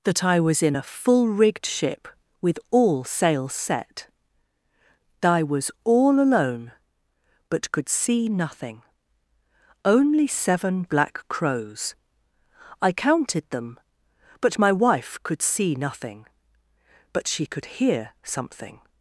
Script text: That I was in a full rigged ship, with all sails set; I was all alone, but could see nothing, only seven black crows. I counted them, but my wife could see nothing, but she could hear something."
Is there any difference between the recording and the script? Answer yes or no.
no